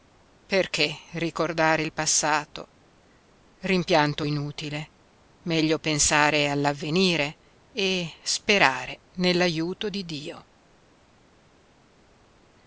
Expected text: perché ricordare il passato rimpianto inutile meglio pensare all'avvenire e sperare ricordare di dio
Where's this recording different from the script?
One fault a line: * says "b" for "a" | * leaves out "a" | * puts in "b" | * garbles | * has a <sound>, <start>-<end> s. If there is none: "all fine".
* says "nell'aiuto" for "ricordare"